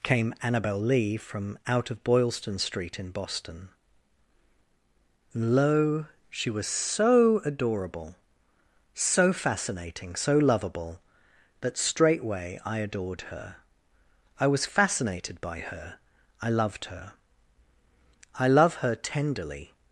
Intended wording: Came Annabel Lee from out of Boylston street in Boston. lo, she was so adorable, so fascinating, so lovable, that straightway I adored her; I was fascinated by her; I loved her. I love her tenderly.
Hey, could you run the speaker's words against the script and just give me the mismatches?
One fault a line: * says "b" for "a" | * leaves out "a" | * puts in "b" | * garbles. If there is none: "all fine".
all fine